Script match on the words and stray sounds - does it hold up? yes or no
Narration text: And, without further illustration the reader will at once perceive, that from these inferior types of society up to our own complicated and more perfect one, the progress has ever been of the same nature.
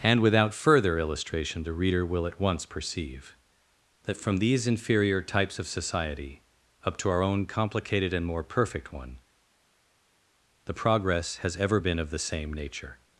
yes